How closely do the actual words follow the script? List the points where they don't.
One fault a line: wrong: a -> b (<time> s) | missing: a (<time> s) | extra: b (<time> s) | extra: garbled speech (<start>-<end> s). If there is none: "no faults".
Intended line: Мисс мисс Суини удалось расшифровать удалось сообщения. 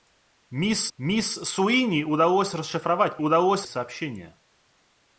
no faults